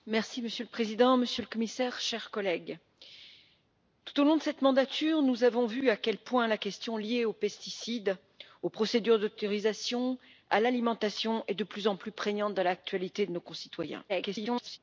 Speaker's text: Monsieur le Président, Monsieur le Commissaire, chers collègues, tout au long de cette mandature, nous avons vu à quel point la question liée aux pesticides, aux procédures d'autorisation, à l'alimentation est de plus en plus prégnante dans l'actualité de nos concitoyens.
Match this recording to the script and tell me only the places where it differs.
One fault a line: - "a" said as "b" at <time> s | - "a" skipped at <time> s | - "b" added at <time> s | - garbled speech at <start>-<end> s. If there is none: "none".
- garbled speech at 14.1-14.8 s